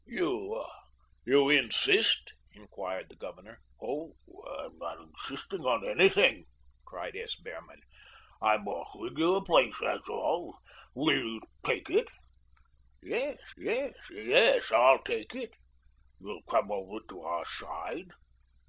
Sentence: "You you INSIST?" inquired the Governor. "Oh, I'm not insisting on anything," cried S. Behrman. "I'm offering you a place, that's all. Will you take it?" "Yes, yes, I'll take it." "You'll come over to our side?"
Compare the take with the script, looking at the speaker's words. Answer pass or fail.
fail